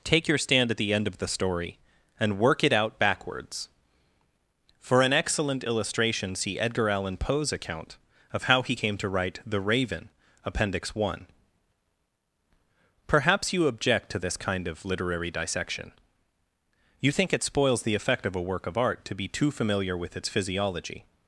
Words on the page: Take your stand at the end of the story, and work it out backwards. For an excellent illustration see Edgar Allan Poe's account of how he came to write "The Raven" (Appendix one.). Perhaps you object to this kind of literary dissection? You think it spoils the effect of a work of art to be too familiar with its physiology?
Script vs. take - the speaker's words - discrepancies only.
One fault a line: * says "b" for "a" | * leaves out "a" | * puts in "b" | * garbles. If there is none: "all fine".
all fine